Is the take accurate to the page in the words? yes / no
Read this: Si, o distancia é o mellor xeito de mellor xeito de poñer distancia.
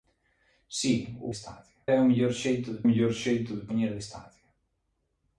yes